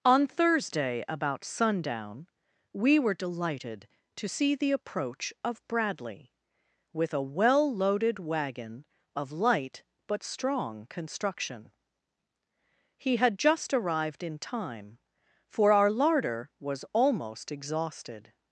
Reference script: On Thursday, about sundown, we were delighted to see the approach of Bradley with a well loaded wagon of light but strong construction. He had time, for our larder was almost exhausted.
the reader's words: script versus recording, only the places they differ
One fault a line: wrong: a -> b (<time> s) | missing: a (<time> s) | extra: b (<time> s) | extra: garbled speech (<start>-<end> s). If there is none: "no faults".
extra: just arrived in (13.4 s)